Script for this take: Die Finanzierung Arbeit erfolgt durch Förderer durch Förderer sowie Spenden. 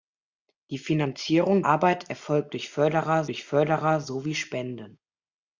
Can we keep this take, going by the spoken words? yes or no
yes